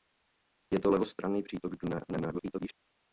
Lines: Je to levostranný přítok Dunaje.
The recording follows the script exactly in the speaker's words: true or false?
false